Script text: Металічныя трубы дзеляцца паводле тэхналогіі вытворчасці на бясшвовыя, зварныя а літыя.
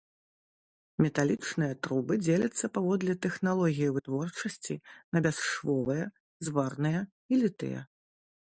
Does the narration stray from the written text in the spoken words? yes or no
yes